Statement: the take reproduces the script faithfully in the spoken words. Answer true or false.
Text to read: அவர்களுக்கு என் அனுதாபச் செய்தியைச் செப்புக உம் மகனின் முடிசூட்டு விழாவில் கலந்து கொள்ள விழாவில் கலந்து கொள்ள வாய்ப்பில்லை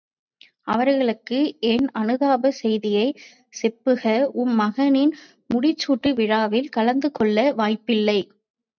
false